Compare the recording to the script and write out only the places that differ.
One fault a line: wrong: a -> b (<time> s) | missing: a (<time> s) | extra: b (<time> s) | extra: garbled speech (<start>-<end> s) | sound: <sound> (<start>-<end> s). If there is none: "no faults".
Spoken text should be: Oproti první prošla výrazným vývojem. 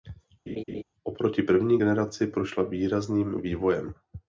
sound: laugh (0.5-0.8 s)
extra: generaci (1.8 s)